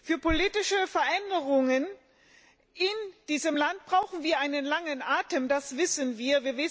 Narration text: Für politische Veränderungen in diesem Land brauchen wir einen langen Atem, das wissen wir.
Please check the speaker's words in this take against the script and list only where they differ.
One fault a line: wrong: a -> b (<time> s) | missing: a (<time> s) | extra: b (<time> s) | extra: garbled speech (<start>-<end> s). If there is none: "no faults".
no faults